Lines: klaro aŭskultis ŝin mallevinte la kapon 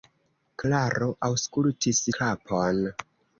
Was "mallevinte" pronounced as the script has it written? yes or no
no